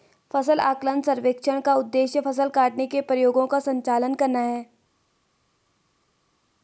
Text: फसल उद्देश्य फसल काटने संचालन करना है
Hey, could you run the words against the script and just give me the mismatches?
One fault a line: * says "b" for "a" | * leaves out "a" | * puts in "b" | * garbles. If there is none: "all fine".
* puts in "आकलन सर्वेक्षण का"
* puts in "के प्रयोगों का"